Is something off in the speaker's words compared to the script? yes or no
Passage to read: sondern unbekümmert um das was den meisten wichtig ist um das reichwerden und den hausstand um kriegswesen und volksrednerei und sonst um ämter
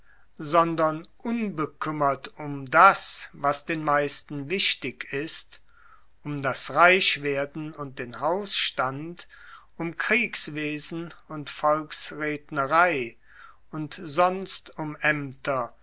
no